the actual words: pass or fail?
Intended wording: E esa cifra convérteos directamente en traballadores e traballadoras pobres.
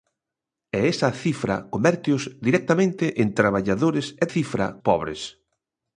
fail